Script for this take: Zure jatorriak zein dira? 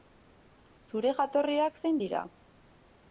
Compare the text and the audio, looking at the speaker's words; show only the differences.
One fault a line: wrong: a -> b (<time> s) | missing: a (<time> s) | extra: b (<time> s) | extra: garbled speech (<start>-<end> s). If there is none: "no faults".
no faults